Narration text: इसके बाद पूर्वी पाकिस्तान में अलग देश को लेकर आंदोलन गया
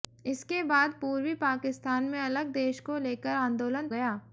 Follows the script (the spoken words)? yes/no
yes